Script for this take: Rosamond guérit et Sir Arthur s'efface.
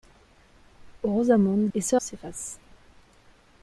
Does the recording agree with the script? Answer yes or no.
no